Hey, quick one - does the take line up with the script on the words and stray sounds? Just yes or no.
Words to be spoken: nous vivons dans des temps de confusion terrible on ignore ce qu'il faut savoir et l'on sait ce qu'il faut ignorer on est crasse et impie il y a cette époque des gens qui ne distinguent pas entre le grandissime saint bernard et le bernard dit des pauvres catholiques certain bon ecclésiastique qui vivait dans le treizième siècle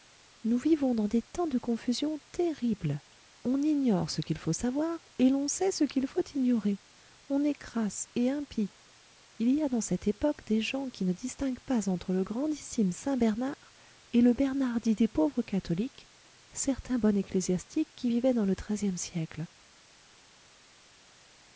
no